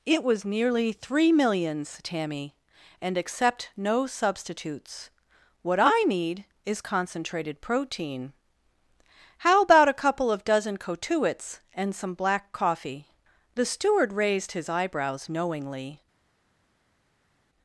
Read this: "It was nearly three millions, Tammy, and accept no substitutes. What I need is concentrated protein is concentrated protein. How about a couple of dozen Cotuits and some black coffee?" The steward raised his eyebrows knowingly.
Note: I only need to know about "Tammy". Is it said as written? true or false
true